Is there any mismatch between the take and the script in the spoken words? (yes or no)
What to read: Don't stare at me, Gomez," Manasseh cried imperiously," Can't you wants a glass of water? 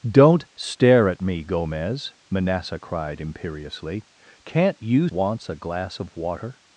no